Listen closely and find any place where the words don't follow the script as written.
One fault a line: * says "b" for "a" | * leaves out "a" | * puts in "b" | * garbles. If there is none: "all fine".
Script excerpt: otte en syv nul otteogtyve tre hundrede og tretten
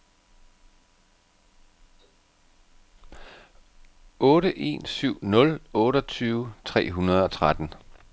all fine